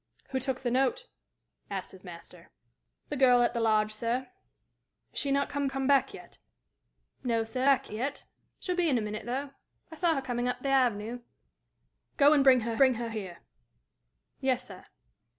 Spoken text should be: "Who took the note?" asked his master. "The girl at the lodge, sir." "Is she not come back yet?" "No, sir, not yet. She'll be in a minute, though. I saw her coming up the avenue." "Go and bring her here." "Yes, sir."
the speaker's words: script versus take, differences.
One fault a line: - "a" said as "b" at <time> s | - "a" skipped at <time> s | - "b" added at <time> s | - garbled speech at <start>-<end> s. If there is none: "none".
- "come" added at 5.7 s
- "not" said as "back" at 7.6 s
- "bring her" added at 12.8 s